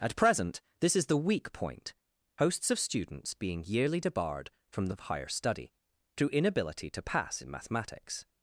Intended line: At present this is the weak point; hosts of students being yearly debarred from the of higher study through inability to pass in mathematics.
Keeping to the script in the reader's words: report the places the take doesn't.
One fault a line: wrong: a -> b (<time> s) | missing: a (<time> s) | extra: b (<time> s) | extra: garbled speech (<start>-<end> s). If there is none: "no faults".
no faults